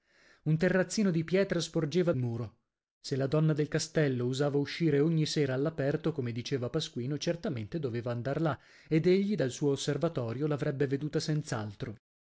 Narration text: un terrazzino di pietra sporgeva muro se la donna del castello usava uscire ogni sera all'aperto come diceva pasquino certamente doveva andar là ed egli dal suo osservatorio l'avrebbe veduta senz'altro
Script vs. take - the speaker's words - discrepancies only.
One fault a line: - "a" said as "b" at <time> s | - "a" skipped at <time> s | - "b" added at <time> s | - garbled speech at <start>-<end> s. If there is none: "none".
none